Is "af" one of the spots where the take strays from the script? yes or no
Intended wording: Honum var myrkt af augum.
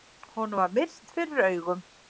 yes